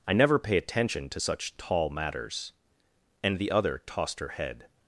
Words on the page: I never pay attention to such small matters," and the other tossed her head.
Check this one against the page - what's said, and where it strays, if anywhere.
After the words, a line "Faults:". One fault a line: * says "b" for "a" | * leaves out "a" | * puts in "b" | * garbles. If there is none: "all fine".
I never pay attention to such tall matters," and the other tossed her head.
Faults:
* says "tall" for "small"